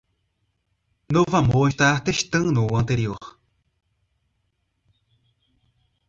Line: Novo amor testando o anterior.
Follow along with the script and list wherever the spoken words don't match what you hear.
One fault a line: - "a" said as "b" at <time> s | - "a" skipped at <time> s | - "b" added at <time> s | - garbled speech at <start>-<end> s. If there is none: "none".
- "está" added at 1.6 s